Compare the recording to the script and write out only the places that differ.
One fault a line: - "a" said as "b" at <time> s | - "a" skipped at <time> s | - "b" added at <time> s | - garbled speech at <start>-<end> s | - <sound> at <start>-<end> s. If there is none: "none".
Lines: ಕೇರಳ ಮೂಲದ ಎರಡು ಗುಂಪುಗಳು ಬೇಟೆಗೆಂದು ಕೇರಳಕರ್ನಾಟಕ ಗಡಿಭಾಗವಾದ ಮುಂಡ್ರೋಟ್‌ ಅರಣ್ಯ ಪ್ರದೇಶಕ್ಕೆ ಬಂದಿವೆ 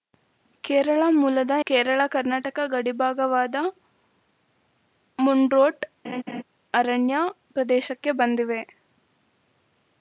- "ಎರಡು ಗುಂಪುಗಳು ಬೇಟೆಗೆಂದು" skipped at 1.5 s
- laugh at 6.0-6.4 s